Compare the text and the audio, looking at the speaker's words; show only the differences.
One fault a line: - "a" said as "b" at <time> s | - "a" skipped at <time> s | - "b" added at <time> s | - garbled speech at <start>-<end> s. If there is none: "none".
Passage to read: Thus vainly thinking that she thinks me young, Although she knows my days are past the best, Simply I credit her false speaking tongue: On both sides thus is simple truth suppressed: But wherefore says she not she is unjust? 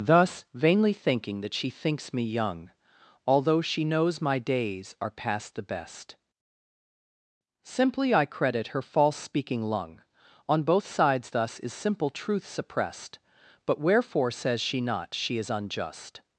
- "tongue" said as "lung" at 9.6 s